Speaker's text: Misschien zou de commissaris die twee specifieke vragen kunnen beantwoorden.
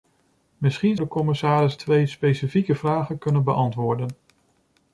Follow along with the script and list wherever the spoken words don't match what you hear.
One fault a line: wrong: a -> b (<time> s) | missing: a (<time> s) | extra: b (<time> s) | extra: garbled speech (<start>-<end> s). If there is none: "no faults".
missing: zou (1.0 s)
missing: die (1.8 s)